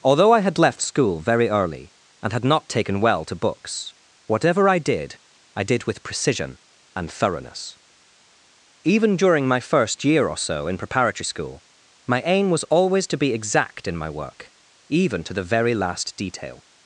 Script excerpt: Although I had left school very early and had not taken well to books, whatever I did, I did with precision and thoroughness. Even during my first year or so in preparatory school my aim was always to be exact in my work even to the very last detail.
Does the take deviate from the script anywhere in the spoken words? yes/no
no